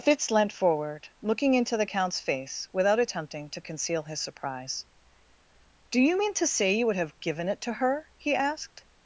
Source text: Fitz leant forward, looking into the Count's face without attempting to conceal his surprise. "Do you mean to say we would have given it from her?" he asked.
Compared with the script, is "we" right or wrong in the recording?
wrong